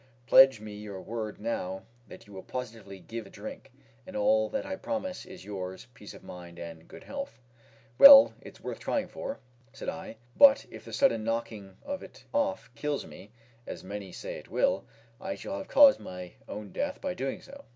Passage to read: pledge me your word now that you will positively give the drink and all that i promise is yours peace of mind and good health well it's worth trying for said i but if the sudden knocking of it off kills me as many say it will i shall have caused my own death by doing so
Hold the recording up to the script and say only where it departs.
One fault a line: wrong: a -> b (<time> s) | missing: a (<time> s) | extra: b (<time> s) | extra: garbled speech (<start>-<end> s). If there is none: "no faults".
no faults